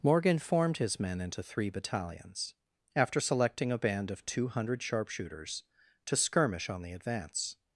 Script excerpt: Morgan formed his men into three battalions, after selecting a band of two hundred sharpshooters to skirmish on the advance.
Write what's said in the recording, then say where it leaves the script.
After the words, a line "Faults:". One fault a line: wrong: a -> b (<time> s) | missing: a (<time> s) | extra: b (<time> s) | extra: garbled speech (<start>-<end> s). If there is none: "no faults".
Morgan formed his men into three battalions, after selecting a band of two hundred sharpshooters to skirmish on the advance.
Faults:
no faults